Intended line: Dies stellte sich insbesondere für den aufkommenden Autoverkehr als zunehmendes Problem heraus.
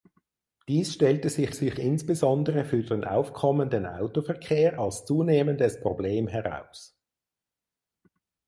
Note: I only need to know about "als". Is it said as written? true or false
true